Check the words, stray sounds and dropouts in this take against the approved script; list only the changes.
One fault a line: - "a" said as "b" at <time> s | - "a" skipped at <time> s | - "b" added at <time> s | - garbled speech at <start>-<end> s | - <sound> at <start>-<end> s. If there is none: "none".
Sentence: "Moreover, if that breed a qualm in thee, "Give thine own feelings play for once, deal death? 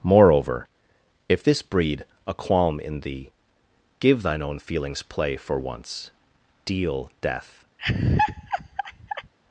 - "that" said as "this" at 1.4 s
- laugh at 7.8-9.3 s